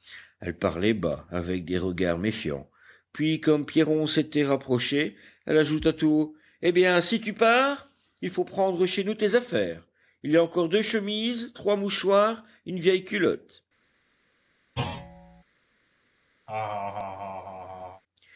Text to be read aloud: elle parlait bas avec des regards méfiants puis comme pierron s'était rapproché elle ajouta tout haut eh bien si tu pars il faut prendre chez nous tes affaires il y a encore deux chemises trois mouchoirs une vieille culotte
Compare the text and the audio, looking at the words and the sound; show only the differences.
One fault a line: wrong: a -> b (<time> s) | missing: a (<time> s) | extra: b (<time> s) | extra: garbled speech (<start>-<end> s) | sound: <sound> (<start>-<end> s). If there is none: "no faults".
sound: thud (14.8-15.4 s)
sound: laugh (16.5-18.0 s)